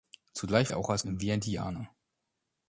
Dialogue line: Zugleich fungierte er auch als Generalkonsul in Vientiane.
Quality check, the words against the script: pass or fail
fail